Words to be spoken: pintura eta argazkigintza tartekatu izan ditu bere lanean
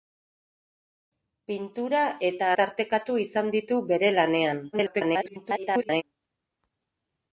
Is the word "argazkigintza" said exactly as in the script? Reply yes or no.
no